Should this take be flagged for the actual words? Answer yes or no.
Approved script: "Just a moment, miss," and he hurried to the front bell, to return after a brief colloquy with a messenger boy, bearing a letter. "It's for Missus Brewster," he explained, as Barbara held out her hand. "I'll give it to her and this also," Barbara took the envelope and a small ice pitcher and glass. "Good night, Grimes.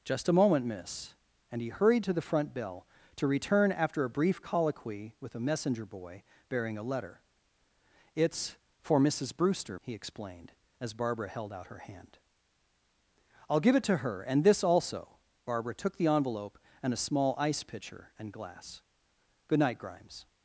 no